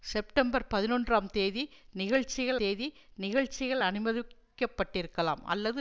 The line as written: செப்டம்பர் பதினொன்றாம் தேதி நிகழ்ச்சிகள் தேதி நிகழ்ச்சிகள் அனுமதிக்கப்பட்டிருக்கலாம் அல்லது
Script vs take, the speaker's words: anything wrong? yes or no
no